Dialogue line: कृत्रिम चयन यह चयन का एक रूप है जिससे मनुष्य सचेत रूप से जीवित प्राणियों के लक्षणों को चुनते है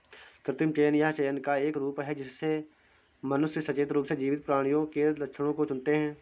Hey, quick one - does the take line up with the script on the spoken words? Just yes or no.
yes